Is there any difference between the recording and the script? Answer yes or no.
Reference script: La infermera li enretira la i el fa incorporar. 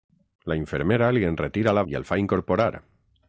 no